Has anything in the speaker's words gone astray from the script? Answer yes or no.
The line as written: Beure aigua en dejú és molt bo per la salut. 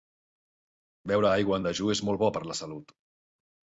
no